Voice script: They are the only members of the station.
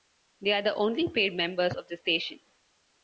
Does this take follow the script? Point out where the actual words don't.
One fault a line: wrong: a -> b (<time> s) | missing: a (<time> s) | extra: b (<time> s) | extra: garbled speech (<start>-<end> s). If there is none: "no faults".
extra: paid (1.1 s)